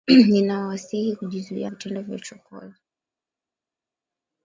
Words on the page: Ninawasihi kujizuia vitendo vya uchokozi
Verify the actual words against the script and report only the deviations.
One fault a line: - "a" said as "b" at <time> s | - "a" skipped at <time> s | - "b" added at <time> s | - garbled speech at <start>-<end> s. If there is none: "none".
none